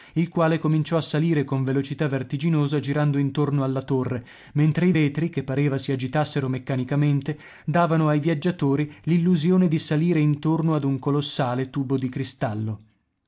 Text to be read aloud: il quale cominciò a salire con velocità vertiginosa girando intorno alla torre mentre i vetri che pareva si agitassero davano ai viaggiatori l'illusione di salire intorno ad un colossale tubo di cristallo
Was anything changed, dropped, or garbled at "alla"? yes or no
no